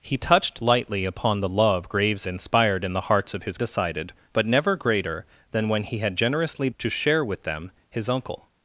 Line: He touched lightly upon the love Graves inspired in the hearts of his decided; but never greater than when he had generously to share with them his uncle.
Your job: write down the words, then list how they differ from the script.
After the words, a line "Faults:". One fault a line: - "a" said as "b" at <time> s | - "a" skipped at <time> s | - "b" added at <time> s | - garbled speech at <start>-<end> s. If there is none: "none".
He touched lightly upon the love Graves inspired in the hearts of his decided; but never greater than when he had generously to share with them his uncle.
Faults:
none